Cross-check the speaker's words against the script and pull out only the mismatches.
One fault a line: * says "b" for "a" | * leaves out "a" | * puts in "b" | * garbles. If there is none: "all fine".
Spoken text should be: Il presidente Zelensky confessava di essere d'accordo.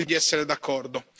* leaves out "presidente Zelensky confessava"